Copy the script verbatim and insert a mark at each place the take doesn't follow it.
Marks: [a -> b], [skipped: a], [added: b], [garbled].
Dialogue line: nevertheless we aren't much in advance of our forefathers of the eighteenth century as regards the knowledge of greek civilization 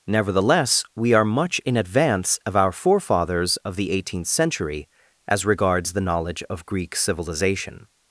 nevertheless we [aren't -> are] much in advance of our forefathers of the eighteenth century as regards the knowledge of greek civilization